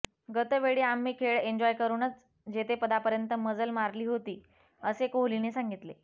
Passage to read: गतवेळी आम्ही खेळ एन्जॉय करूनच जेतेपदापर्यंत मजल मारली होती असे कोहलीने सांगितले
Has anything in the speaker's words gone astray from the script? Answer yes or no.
no